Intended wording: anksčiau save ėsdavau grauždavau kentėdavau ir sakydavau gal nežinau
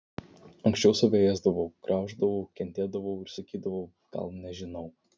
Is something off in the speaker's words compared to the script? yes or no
no